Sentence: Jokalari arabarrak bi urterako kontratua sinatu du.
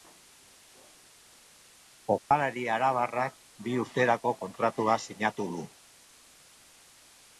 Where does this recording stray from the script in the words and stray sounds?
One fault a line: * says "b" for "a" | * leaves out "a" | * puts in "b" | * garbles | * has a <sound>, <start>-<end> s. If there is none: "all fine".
* has a dropout, 2.2-2.3 s